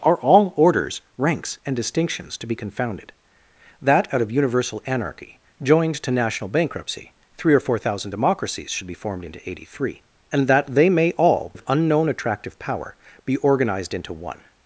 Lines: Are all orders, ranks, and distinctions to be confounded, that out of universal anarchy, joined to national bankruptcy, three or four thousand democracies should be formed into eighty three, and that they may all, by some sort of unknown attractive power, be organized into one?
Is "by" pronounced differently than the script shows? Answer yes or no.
yes